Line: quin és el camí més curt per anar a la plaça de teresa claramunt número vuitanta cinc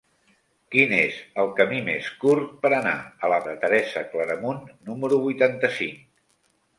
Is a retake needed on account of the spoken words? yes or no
yes